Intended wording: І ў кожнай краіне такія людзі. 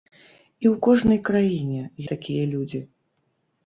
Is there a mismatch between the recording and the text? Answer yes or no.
no